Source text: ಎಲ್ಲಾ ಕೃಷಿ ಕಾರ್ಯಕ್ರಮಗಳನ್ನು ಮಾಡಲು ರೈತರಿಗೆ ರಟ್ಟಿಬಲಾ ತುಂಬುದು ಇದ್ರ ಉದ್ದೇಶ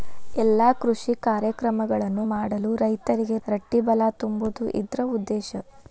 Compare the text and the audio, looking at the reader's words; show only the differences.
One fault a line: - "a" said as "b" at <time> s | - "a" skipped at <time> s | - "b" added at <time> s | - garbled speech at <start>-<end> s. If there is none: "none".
none